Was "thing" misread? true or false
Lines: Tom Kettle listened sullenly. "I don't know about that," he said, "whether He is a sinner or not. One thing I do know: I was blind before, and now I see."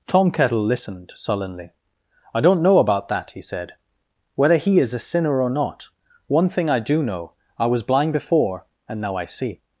false